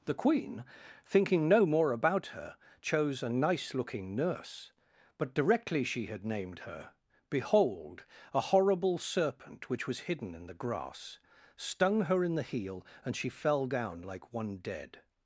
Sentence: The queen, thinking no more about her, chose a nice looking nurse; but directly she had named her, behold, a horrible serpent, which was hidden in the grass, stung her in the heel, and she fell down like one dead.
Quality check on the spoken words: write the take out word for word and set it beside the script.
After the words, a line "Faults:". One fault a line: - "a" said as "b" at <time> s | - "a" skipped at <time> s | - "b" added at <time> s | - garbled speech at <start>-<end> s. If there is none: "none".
The queen, thinking no more about her, chose a nice looking nurse; but directly she had named her, behold, a horrible serpent, which was hidden in the grass, stung her in the heel, and she fell down like one dead.
Faults:
none